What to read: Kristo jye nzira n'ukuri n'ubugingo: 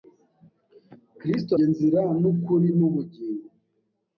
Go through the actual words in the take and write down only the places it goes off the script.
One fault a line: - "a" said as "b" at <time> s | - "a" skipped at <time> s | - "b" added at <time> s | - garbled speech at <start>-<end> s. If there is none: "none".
none